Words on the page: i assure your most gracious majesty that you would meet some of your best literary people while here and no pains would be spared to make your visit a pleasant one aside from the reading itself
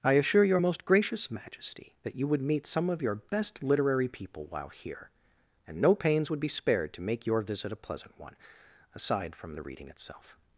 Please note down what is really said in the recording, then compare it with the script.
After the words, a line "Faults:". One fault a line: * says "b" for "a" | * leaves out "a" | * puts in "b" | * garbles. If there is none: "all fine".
i assure your most gracious majesty that you would meet some of your best literary people while here and no pains would be spared to make your visit a pleasant one aside from the reading itself
Faults:
all fine